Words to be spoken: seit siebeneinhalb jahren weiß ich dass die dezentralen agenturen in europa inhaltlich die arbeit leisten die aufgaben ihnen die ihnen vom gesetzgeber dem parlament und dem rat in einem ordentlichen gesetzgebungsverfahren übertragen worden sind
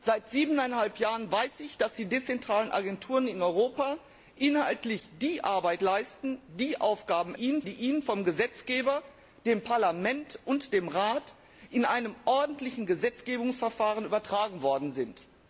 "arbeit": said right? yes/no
yes